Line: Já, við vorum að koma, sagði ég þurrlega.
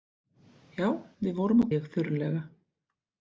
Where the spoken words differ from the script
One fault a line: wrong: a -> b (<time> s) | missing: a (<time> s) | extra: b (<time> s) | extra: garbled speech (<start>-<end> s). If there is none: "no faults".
missing: koma sagði (1.7 s)